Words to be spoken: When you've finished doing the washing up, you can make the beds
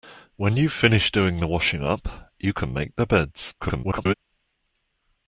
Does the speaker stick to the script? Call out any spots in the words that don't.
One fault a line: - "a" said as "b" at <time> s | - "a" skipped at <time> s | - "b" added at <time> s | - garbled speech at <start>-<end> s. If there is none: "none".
- garbled speech at 3.6-4.1 s